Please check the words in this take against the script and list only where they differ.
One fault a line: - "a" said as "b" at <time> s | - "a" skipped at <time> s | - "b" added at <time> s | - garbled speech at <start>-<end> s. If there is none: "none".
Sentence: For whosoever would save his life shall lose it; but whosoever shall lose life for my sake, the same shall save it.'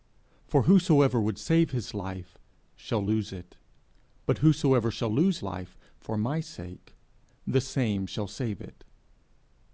none